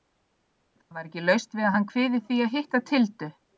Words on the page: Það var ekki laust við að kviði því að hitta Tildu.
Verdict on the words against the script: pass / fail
fail